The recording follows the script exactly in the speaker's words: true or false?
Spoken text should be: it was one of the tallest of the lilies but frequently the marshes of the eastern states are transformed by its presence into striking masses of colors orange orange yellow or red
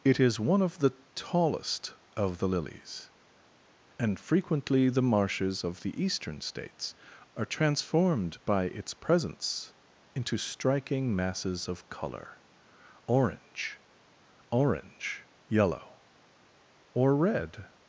false